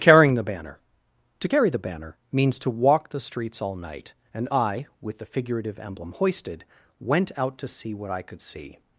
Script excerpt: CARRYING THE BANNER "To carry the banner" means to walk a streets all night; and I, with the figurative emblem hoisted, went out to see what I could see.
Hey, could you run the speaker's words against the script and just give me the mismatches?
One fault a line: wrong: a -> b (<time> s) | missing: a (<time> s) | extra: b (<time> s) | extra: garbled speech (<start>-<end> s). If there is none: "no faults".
wrong: a -> the (3.1 s)